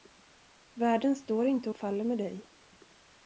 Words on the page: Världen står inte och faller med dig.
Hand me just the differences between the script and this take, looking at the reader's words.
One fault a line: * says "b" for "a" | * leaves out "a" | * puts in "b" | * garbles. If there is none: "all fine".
all fine